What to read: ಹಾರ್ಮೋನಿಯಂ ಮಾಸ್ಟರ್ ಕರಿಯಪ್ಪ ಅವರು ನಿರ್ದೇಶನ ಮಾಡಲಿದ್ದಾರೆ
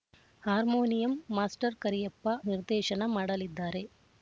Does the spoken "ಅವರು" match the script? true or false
false